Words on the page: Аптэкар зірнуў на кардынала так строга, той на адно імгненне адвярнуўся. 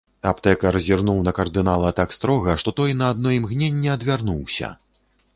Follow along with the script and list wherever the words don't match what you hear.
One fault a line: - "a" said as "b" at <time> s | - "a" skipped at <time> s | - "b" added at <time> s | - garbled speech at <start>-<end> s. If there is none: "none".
- "што" added at 2.6 s